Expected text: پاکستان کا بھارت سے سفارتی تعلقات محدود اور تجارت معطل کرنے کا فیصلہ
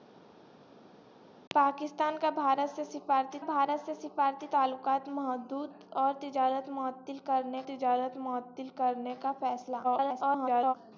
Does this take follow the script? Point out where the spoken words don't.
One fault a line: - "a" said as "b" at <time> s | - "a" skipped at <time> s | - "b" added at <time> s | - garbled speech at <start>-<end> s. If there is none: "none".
- "بھارت سے سفارتی" added at 3.4 s
- "تجارت معطل کرنے" added at 7.7 s
- garbled speech at 9.8-10.7 s